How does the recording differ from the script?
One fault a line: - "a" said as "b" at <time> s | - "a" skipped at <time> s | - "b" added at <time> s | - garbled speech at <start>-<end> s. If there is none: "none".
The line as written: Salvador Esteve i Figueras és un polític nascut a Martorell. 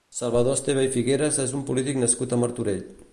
none